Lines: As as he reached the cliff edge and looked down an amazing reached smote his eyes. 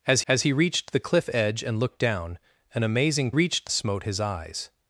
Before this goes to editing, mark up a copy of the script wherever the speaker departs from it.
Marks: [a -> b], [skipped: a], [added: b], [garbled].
As as he reached the cliff edge and looked down an amazing reached smote his eyes.